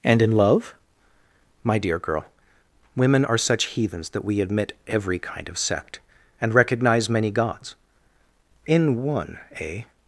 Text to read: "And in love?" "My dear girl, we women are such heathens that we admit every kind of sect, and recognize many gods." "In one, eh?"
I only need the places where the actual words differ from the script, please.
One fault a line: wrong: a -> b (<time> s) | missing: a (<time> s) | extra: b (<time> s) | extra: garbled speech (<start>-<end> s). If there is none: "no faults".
missing: we (2.2 s)